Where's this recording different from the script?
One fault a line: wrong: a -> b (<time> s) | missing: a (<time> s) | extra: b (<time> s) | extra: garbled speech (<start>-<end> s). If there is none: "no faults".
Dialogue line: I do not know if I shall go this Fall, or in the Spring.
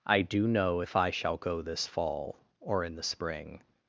missing: not (0.5 s)